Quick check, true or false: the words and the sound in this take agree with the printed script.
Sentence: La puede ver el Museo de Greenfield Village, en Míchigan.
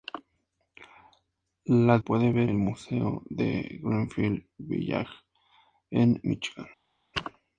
true